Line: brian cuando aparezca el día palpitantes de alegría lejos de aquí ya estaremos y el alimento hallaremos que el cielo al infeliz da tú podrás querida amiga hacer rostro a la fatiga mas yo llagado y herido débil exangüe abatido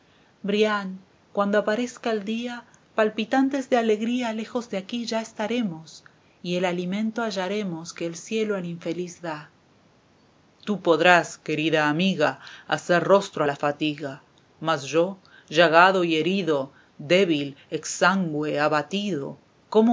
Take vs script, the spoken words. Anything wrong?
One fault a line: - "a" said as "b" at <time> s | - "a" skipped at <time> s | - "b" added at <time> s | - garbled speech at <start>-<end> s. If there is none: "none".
none